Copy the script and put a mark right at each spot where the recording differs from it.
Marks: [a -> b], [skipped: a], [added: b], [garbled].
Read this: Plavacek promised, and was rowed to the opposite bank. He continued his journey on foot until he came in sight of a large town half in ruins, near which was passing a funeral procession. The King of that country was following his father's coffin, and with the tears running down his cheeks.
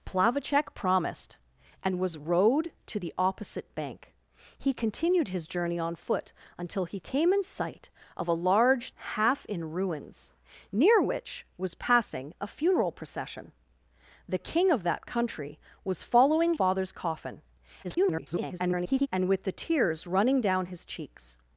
Plavacek promised, and was rowed to the opposite bank. He continued his journey on foot until he came in sight of a large [skipped: town] half in ruins, near which was passing a funeral procession. The King of that country was following [skipped: his] father's coffin, [garbled] and with the tears running down his cheeks.